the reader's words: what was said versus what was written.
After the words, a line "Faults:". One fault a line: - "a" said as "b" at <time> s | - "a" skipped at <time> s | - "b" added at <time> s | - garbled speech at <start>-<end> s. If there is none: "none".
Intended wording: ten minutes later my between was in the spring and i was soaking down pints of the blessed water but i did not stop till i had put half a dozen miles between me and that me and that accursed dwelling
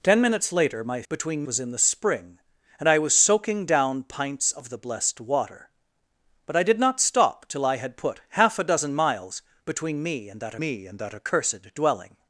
ten minutes later my between was in the spring and i was soaking down pints of the blessed water but i did not stop till i had put half a dozen miles between me and that me and that accursed dwelling
Faults:
none